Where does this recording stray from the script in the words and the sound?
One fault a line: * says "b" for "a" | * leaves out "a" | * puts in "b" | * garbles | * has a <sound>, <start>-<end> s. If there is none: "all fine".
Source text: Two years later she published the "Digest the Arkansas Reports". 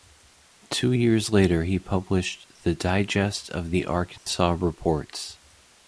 * says "he" for "she"
* puts in "of"
* has a dropout, 4.2-4.3 s